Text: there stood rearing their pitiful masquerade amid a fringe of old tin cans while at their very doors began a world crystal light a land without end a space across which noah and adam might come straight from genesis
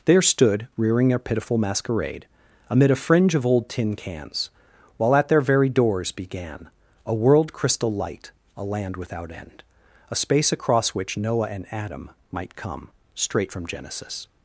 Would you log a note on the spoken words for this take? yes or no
no